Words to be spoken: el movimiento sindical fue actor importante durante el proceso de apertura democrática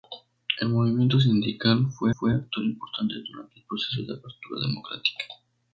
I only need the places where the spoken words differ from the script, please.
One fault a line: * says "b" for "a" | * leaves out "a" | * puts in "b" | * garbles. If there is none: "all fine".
* puts in "fue"